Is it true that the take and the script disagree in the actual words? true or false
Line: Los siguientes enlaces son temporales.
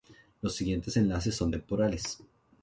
false